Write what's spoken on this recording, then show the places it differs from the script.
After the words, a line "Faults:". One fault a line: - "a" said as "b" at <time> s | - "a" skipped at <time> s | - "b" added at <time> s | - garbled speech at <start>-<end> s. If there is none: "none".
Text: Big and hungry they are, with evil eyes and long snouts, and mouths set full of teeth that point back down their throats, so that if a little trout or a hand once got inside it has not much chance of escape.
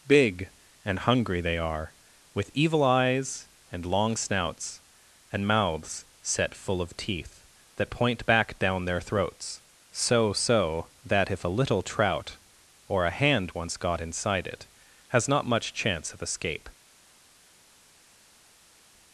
Big and hungry they are, with evil eyes and long snouts, and mouths set full of teeth that point back down their throats, so so that if a little trout or a hand once got inside it has not much chance of escape.
Faults:
- "so" added at 10.3 s